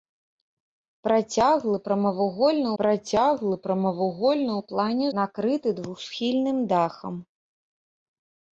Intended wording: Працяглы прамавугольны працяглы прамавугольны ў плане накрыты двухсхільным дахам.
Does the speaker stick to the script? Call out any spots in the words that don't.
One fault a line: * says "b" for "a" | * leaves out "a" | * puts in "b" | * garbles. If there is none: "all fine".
all fine